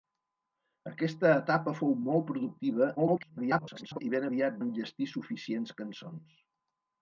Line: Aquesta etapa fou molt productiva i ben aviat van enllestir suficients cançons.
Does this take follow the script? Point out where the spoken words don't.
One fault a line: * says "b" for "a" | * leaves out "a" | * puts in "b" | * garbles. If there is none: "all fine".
* garbles
* leaves out "van"